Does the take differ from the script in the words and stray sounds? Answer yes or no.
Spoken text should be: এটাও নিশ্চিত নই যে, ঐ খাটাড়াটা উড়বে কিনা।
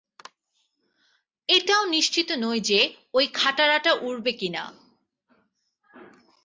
no